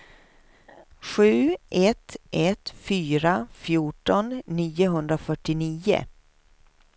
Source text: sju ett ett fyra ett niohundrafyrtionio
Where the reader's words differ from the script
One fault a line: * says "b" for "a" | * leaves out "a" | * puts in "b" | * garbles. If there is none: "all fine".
* says "fjorton" for "ett"